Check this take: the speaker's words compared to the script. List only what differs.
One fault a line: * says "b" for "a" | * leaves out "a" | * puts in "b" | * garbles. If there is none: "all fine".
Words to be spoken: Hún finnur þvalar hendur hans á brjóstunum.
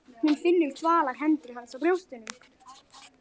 all fine